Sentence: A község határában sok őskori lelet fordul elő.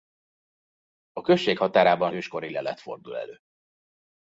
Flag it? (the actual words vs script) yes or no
yes